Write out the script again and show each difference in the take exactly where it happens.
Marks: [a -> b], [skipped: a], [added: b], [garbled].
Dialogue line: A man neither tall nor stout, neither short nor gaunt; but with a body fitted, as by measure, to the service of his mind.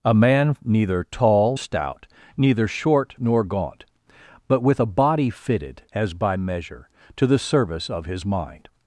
A man neither tall [skipped: nor] stout, neither short nor gaunt; but with a body fitted, as by measure, to the service of his mind.